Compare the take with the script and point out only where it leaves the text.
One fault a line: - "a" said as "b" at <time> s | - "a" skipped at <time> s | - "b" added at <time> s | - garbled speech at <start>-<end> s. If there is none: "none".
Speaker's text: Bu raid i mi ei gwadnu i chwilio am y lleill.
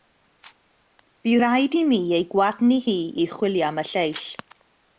- "hi" added at 2.9 s